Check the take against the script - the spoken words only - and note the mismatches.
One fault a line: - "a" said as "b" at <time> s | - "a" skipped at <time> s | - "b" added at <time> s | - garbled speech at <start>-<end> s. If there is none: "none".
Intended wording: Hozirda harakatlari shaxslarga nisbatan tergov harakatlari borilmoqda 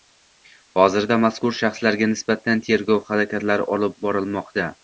- "harakatlari" said as "mazkur" at 1.2 s
- "olib" added at 3.8 s